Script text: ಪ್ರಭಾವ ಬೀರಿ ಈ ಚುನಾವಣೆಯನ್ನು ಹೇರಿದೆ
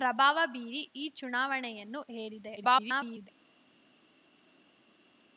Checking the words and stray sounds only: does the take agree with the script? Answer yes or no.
no